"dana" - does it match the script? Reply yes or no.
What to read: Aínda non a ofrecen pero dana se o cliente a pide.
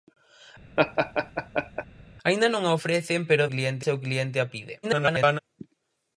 no